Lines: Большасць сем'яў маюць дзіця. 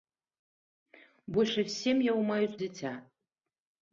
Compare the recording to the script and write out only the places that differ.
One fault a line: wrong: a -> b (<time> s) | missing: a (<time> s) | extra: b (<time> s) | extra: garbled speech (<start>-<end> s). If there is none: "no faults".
no faults